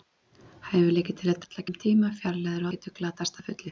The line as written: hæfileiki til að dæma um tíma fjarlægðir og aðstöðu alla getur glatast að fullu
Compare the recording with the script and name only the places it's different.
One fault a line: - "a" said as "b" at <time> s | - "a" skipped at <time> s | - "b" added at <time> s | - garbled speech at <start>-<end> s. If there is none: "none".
- "dæma" said as "alla" at 1.4 s
- "og aðstöðu alla" skipped at 2.7 s